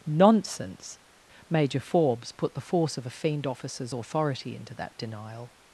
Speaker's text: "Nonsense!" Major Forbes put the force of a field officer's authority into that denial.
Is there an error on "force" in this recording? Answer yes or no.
no